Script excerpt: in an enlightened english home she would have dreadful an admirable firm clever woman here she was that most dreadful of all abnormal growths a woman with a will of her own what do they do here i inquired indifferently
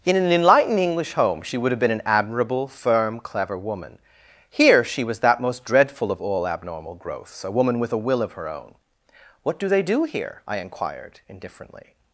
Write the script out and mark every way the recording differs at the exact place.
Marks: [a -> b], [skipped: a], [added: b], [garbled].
in an enlightened english home she would have [dreadful -> been] an admirable firm clever woman here she was that most dreadful of all abnormal growths a woman with a will of her own what do they do here i inquired indifferently